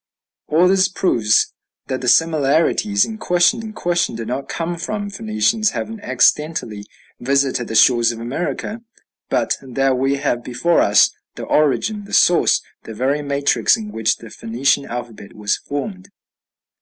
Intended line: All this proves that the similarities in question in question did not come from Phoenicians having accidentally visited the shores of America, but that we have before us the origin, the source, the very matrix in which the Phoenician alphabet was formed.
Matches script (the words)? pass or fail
pass